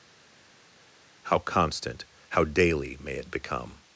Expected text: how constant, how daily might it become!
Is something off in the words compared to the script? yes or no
yes